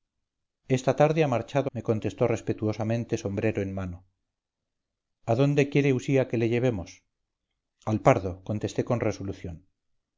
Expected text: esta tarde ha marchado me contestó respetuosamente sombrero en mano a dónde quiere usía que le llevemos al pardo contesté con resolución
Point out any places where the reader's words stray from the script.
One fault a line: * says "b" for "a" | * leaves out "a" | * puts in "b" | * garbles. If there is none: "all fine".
all fine